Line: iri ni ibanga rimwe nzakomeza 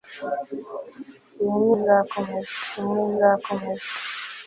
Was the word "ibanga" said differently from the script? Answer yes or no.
yes